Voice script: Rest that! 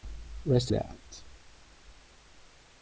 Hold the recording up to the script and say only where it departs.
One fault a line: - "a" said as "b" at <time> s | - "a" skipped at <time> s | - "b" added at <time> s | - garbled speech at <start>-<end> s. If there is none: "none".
none